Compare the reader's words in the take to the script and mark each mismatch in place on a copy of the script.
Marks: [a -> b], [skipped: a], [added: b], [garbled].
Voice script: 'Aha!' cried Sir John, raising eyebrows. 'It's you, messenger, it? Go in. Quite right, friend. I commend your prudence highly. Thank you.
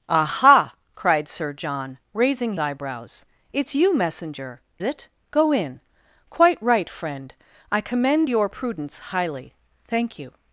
'Aha!' cried Sir John, raising eyebrows. 'It's you, messenger, it? Go in. Quite right, friend. I commend your prudence highly. Thank you.